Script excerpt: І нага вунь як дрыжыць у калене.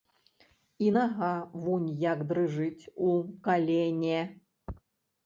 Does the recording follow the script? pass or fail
pass